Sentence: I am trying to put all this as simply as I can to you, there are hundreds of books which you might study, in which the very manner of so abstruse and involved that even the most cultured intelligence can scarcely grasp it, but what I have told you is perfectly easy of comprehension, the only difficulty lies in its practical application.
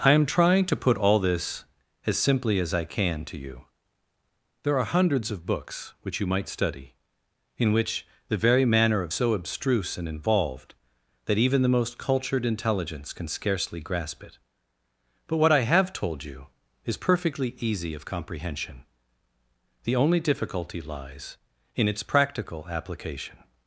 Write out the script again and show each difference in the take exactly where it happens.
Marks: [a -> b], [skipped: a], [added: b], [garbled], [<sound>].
I am trying to put all this as simply as I can to you, there are hundreds of books which you might study, in which the very manner of so abstruse and involved that even the most cultured intelligence can scarcely grasp it, but what I have told you is perfectly easy of comprehension, the only difficulty lies in its practical application.